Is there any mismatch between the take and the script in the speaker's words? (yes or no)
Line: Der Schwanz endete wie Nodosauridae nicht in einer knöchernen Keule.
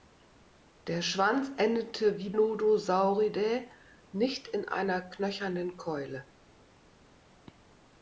no